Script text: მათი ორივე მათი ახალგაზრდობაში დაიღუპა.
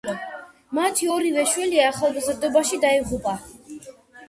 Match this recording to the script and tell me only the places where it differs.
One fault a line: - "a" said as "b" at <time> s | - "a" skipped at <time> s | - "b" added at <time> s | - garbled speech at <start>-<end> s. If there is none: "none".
- "მათი" said as "შვილი" at 1.5 s